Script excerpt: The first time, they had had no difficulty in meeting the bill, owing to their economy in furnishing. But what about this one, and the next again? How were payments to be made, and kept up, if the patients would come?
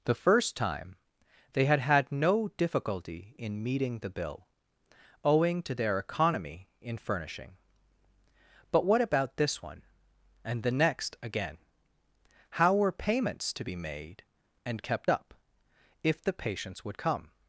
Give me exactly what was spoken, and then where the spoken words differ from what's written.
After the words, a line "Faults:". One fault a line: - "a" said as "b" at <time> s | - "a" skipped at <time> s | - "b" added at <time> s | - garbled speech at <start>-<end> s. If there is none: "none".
The first time, they had had no difficulty in meeting the bill, owing to their economy in furnishing. But what about this one, and the next again? How were payments to be made, and kept up, if the patients would come?
Faults:
none